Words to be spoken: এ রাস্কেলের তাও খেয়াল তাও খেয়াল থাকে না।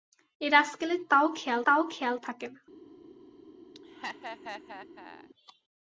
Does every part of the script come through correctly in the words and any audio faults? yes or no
no